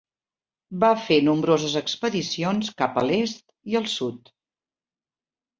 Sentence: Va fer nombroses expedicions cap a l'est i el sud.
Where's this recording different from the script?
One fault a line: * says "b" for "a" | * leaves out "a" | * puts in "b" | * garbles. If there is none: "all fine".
all fine